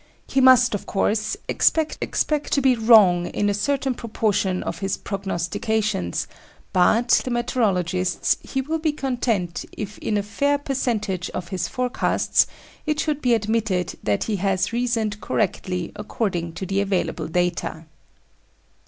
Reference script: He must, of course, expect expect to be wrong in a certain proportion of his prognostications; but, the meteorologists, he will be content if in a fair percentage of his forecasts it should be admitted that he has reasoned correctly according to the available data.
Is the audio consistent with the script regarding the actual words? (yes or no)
yes